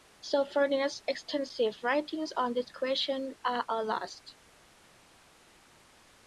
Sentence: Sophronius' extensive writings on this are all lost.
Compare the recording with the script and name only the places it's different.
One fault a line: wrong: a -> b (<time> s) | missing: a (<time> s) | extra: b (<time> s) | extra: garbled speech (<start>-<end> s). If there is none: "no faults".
extra: question (2.7 s)